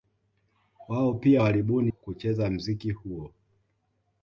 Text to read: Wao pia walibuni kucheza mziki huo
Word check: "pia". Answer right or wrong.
right